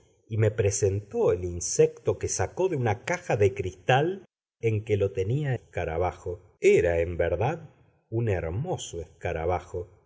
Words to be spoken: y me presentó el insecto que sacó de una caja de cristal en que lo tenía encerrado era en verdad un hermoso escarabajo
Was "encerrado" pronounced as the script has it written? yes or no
no